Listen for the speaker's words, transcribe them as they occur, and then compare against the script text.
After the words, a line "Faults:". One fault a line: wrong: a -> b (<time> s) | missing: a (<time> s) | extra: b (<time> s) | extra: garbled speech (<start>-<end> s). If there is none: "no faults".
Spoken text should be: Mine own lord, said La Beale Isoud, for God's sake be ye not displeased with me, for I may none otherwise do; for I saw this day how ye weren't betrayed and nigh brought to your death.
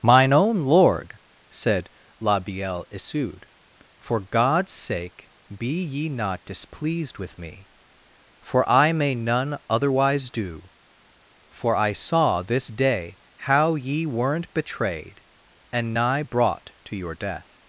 Mine own lord, said La Beale Isoud, for God's sake be ye not displeased with me, for I may none otherwise do; for I saw this day how ye weren't betrayed and nigh brought to your death.
Faults:
no faults